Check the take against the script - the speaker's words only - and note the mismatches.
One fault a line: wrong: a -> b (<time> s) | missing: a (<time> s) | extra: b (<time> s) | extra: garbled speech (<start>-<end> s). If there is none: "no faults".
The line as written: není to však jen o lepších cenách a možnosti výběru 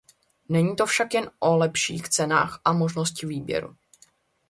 no faults